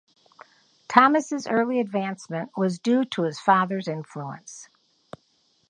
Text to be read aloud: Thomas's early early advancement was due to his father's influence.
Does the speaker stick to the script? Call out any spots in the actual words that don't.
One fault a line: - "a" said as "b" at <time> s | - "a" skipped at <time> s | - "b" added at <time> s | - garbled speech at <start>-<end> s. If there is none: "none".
- "early" skipped at 1.8 s